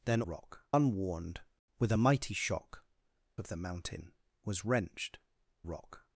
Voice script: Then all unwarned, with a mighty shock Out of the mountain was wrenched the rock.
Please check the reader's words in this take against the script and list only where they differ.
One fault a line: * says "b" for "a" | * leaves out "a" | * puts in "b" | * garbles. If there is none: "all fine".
* says "rock" for "all"
* leaves out "Out"
* leaves out "the"